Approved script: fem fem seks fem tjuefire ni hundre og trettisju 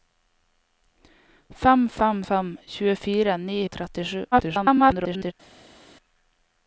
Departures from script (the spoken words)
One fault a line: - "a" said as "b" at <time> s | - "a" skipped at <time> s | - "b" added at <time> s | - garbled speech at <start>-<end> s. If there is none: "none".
- "seks" skipped at 2.2 s
- "hundre" skipped at 3.6 s
- garbled speech at 4.3-5.3 s